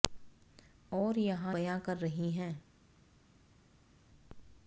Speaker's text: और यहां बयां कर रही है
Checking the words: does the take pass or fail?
pass